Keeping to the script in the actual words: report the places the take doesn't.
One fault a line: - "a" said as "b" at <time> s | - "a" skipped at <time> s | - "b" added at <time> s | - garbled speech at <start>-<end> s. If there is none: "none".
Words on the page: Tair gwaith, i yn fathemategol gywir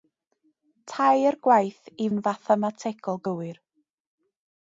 none